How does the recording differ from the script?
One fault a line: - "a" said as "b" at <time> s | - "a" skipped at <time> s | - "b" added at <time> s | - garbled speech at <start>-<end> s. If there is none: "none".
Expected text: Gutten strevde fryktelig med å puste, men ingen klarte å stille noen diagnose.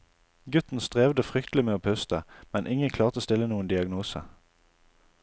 none